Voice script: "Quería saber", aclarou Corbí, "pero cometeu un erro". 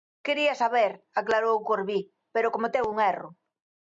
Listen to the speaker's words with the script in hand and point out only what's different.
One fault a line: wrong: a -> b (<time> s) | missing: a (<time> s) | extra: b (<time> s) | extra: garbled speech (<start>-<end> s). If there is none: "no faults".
no faults